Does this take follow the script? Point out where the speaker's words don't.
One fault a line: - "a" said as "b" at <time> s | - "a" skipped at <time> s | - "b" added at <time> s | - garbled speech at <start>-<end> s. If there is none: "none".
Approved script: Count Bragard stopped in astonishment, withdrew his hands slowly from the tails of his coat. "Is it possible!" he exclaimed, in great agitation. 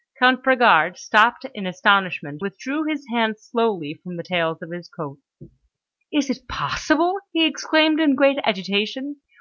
none